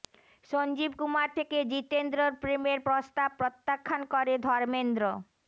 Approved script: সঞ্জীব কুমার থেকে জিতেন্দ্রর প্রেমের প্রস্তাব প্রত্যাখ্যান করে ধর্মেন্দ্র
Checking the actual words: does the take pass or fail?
pass